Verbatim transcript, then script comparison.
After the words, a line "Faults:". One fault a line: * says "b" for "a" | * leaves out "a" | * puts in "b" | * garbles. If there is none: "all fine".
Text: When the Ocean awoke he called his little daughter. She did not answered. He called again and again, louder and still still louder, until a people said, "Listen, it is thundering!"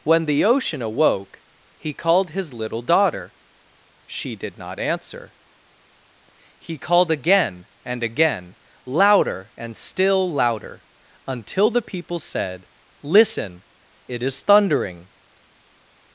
When the Ocean awoke he called his little daughter. She did not answer. He called again and again, louder and still louder, until the people said, "Listen, it is thundering!"
Faults:
* says "answer" for "answered"
* leaves out "still"
* says "the" for "a"